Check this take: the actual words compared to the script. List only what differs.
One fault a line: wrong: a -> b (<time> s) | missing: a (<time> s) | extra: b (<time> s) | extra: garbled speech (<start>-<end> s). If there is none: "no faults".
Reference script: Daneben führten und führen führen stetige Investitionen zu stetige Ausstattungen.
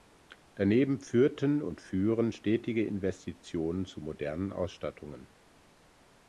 missing: führen (2.3 s)
wrong: stetige -> modernen (4.0 s)